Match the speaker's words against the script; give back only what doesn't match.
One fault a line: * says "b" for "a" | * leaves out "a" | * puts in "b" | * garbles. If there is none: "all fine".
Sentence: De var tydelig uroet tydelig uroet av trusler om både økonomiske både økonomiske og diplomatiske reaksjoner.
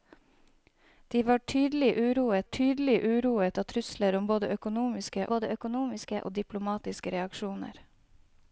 all fine